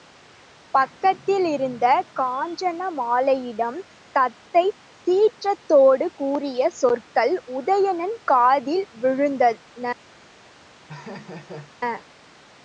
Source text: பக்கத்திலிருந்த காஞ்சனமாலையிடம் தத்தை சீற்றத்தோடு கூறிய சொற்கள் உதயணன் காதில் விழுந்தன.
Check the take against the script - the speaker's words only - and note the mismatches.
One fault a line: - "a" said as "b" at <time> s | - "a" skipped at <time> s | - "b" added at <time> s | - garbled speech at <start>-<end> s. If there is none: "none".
none